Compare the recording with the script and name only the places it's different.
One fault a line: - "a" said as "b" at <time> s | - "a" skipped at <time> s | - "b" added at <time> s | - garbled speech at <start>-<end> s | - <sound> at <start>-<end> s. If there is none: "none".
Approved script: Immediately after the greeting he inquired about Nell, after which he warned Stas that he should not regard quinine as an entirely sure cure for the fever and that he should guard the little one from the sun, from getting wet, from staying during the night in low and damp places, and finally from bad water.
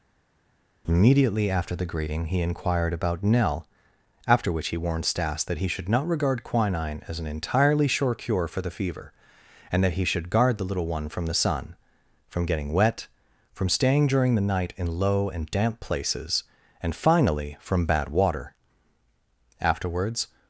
- "Afterwards" added at 19.6 s